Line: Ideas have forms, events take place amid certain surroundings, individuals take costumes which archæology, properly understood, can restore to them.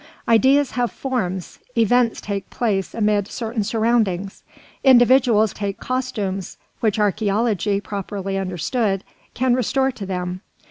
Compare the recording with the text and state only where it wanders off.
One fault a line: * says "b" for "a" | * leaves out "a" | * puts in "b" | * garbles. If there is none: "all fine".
all fine